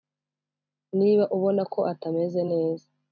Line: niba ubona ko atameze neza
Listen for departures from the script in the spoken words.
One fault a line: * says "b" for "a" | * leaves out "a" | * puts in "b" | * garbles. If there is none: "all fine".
all fine